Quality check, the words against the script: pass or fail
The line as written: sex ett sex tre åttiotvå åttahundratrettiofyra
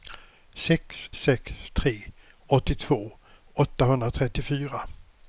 fail